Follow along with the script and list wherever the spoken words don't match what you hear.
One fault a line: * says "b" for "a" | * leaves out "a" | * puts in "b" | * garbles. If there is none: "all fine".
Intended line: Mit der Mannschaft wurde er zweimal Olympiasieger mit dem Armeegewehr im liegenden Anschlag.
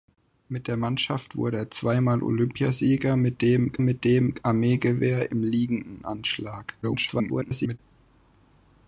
* puts in "mit dem"
* garbles